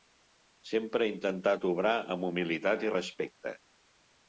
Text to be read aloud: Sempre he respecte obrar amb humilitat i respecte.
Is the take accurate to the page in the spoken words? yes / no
no